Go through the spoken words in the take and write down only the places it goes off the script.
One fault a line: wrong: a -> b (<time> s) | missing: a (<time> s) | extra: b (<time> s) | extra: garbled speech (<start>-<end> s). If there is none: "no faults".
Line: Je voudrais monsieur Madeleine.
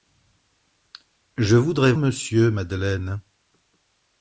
no faults